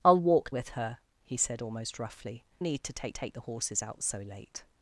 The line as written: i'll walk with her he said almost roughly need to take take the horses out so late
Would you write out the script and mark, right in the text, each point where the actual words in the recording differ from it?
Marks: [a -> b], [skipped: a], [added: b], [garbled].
i'll walk with her he said almost roughly need to take take the horses out so late